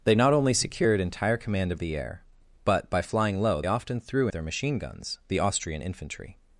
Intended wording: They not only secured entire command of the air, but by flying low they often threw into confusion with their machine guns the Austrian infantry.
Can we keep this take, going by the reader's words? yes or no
no